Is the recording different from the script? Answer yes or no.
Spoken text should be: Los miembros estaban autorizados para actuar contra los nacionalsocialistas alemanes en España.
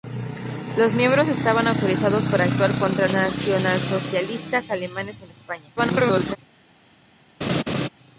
yes